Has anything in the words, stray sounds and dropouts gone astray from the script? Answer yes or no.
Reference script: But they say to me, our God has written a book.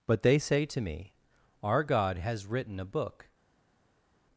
no